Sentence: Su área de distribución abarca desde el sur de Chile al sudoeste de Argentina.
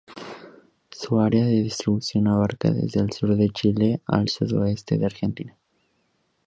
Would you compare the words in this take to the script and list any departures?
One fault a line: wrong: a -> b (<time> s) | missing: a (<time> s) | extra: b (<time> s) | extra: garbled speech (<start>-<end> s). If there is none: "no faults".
no faults